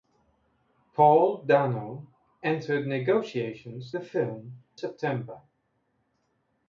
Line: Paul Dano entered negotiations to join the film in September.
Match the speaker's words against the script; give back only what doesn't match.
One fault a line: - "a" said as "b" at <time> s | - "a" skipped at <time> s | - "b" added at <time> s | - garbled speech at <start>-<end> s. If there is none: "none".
- "to join" skipped at 3.9 s
- "in" skipped at 4.6 s